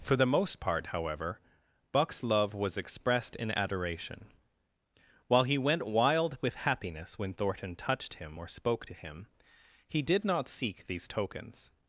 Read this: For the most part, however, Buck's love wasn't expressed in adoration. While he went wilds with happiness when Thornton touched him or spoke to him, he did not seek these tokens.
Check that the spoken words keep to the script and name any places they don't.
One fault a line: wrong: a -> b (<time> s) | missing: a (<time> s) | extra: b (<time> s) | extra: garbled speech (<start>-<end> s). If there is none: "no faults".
wrong: wasn't -> was (2.5 s)
wrong: wilds -> wild (5.9 s)